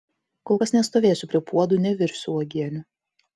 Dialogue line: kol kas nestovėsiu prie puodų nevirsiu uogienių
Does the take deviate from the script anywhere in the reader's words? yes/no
no